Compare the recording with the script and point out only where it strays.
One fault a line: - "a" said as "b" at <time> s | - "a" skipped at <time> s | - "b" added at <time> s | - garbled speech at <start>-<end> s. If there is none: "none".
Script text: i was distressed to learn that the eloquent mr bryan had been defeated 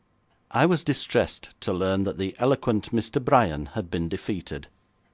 none